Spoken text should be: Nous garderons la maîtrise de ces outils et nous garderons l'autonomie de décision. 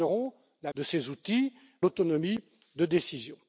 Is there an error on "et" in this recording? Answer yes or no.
yes